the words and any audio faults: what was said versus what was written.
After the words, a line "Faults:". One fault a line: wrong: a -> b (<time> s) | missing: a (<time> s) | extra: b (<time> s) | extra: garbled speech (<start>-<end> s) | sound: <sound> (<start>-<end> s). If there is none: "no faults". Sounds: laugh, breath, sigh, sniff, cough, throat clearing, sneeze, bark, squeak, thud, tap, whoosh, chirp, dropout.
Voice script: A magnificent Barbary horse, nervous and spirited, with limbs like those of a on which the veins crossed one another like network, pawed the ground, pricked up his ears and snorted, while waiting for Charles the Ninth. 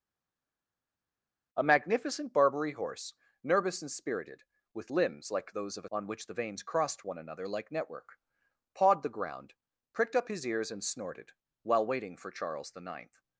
A magnificent Barbary horse, nervous and spirited, with limbs like those of a on which the veins crossed one another like network, pawed the ground, pricked up his ears and snorted, while waiting for Charles the Ninth.
Faults:
no faults